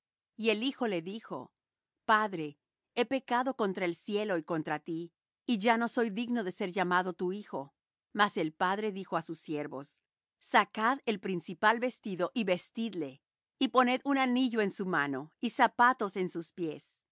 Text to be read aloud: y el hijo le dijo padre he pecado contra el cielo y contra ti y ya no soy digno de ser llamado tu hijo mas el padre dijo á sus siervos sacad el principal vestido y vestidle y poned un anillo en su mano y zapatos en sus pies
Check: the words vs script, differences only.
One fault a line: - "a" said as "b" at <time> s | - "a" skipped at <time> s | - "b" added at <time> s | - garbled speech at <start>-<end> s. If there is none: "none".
none